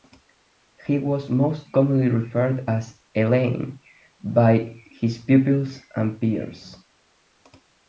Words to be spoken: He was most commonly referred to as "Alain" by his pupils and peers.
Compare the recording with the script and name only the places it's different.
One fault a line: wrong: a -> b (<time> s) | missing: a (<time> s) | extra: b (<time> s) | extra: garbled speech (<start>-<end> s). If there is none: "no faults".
no faults